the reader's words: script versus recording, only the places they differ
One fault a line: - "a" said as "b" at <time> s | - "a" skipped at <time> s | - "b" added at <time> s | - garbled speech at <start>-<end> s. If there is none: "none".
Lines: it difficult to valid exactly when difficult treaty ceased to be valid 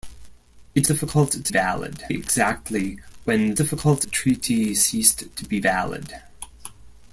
none